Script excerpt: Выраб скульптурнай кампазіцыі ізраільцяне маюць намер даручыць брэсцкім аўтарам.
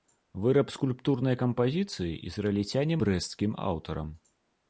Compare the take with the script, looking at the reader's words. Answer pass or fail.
fail